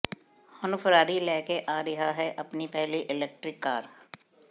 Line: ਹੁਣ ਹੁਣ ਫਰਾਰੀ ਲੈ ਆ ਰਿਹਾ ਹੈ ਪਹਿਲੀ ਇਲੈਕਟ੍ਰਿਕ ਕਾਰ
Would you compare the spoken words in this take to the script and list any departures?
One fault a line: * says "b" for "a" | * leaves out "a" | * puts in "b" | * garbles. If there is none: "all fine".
* leaves out "ਹੁਣ"
* puts in "ਕੇ"
* puts in "ਆਪਣੀ"